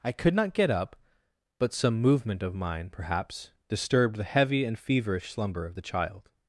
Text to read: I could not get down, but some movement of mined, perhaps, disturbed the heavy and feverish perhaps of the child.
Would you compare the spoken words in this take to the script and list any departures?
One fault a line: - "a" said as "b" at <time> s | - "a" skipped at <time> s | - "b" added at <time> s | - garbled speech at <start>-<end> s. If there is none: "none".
- "down" said as "up" at 0.7 s
- "mined" said as "mine" at 2.5 s
- "perhaps" said as "slumber" at 5.3 s